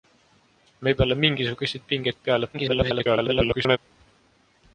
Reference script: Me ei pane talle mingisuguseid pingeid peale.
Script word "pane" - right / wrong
wrong